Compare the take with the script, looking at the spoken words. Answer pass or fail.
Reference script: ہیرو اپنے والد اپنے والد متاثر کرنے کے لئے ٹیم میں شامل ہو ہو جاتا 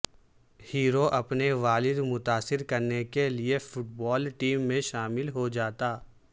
fail